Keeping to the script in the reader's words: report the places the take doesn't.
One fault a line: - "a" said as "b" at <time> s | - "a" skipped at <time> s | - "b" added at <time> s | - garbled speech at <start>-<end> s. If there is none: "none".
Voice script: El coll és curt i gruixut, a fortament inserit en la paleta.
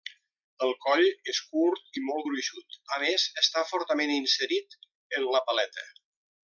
- "molt" added at 2.1 s
- "més està" added at 3.1 s